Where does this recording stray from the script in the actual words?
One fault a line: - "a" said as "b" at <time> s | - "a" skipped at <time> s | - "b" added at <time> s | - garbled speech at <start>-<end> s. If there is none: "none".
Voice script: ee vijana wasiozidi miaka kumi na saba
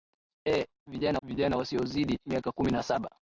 - "vijana" added at 1.2 s